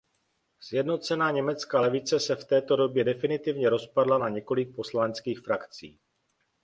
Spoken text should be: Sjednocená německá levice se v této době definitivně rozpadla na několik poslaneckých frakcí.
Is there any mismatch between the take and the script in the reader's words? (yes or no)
no